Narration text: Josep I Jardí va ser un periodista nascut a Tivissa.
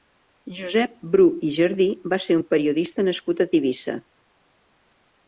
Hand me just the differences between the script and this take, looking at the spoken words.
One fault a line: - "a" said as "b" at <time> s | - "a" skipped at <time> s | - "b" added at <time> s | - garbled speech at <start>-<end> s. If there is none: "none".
- "Bru" added at 1.1 s